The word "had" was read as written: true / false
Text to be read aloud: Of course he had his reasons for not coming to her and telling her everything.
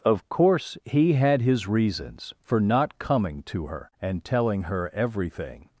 true